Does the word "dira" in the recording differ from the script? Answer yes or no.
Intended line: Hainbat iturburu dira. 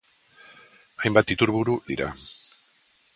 no